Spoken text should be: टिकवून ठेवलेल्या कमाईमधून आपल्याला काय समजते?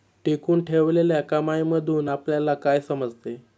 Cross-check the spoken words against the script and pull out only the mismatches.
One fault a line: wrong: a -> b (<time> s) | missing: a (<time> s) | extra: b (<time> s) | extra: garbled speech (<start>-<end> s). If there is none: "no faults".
no faults